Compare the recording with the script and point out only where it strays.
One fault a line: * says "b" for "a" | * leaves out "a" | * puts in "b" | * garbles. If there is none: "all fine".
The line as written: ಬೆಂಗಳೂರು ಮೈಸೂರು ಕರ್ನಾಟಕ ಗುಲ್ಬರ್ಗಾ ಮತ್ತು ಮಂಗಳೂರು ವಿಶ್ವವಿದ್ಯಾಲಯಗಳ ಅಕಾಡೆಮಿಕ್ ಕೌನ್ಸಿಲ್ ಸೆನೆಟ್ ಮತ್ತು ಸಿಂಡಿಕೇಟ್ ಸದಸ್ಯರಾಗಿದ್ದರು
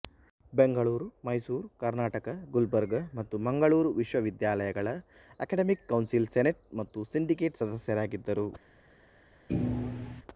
all fine